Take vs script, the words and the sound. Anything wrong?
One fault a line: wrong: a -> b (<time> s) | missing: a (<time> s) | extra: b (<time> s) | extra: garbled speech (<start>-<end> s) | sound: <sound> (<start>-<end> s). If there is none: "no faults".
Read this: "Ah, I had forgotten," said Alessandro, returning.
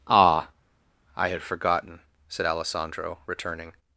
no faults